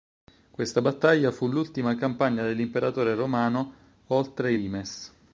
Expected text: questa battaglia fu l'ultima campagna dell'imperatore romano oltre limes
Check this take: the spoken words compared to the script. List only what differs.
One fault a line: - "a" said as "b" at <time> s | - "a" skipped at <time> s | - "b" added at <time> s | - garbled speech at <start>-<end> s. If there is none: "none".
none